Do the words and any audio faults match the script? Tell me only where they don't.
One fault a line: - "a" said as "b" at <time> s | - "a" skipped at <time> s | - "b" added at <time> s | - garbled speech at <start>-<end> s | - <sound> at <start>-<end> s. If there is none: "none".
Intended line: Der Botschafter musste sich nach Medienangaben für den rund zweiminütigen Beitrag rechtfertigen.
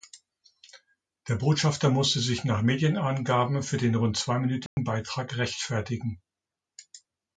- dropout at 4.7-4.8 s